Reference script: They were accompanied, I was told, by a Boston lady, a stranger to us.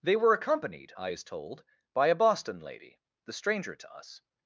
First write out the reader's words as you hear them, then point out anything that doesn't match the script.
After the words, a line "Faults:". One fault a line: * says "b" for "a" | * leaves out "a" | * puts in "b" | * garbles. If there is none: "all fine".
They were accompanied, I is told, by a Boston lady, the stranger to us.
Faults:
* says "is" for "was"
* says "the" for "a"